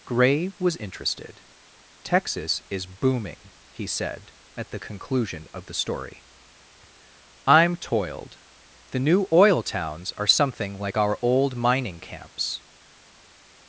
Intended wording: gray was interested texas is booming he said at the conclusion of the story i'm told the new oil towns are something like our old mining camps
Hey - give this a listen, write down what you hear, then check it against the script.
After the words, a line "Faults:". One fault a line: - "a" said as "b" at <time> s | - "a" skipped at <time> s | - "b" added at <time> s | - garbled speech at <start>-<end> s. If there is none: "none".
gray was interested texas is booming he said at the conclusion of the story i'm toiled the new oil towns are something like our old mining camps
Faults:
- "told" said as "toiled" at 7.8 s